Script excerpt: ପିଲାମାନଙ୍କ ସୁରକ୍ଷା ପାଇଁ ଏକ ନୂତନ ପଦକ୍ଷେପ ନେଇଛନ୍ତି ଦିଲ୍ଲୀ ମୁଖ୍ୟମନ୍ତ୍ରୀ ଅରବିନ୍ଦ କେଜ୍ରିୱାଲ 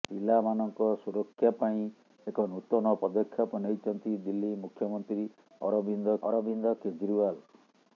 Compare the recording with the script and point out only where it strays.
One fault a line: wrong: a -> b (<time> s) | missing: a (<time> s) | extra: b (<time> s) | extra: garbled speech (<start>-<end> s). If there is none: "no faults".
extra: ଅରବିନ୍ଦ (6.2 s)